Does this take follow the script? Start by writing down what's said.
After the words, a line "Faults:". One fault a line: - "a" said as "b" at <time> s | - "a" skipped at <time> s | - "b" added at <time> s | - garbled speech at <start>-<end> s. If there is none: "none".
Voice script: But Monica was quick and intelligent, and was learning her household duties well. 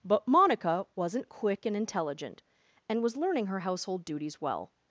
But Monica wasn't quick and intelligent, and was learning her household duties well.
Faults:
- "was" said as "wasn't" at 0.9 s